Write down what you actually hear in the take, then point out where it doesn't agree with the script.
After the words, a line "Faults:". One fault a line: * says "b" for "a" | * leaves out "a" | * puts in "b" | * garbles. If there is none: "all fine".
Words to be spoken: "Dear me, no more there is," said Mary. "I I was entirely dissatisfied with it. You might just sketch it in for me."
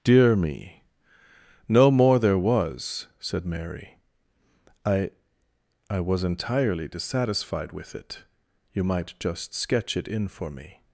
"Dear me, no more there was," said Mary. "I I was entirely dissatisfied with it. You might just sketch it in for me."
Faults:
* says "was" for "is"